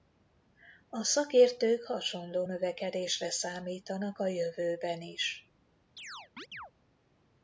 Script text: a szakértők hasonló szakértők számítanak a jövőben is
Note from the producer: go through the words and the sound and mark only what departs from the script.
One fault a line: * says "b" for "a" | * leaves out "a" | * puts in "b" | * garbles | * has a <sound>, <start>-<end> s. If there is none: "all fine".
* says "növekedésre" for "szakértők"
* has a chirp, 6.0-6.7 s